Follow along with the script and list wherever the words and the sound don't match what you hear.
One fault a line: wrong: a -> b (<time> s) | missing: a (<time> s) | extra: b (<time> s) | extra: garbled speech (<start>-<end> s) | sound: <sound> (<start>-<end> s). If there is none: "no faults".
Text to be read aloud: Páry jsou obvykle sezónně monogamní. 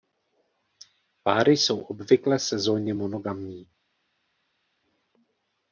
no faults